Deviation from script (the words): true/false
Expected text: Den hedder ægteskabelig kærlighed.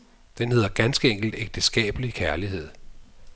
true